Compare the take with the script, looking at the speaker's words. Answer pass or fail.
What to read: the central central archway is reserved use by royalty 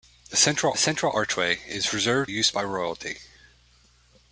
pass